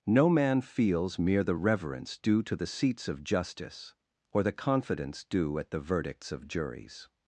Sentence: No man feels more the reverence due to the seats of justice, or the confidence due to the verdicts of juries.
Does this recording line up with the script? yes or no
no